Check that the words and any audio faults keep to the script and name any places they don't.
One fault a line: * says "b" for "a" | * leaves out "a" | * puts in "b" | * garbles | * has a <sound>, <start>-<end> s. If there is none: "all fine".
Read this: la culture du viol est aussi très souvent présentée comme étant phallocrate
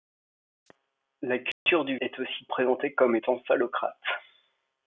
* has a dropout, 1.5-1.7 s
* leaves out "viol"
* leaves out "très souvent"